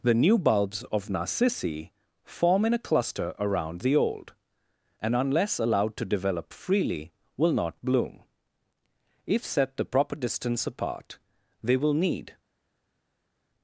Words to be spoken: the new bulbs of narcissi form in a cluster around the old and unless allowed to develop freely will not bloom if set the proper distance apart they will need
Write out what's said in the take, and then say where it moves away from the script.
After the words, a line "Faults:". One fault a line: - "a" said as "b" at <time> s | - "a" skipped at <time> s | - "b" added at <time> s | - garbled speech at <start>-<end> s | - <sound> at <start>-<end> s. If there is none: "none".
the new bulbs of narcissi form in a cluster around the old and unless allowed to develop freely will not bloom if set the proper distance apart they will need
Faults:
none